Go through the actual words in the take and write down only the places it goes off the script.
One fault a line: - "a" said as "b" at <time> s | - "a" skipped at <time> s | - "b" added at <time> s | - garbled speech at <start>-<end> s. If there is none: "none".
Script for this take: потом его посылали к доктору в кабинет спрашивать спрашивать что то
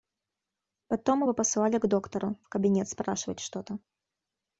- "спрашивать" skipped at 3.4 s